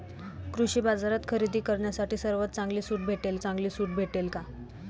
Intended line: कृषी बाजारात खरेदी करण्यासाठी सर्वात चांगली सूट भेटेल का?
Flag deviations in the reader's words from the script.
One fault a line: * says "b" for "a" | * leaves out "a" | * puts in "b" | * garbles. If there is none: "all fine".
* puts in "चांगली सूट भेटेल"